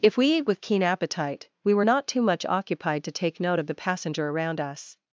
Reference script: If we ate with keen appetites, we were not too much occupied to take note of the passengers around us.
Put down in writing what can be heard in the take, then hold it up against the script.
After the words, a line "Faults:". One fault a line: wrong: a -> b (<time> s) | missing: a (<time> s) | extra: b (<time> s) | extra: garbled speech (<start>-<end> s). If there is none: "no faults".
If we ate with keen appetite, we were not too much occupied to take note of the passenger around us.
Faults:
wrong: appetites -> appetite (0.8 s)
wrong: passengers -> passenger (3.7 s)